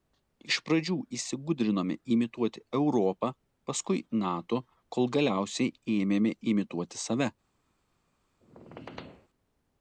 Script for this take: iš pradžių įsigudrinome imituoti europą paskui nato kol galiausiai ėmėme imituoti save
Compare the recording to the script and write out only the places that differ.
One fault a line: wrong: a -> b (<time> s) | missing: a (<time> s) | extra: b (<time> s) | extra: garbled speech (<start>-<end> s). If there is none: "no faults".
no faults